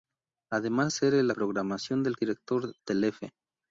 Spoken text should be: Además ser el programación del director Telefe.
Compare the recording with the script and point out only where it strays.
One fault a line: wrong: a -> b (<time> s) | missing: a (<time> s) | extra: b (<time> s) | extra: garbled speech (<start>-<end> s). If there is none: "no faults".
no faults